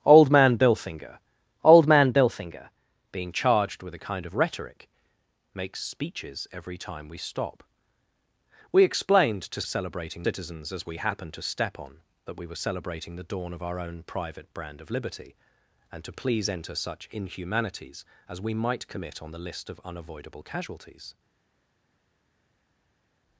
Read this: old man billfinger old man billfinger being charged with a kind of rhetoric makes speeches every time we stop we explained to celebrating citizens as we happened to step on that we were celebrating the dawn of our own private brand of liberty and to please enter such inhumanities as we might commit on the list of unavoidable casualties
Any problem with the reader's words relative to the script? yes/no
no